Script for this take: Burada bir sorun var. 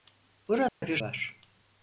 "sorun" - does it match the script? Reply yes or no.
no